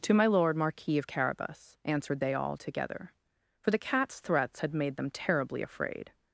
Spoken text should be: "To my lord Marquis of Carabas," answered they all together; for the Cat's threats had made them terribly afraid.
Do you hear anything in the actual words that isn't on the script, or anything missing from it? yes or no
no